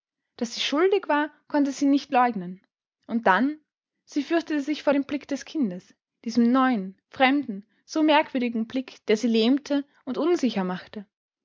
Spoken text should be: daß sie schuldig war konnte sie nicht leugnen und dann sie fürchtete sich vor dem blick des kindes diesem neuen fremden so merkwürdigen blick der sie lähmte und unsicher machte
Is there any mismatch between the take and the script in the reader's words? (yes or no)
no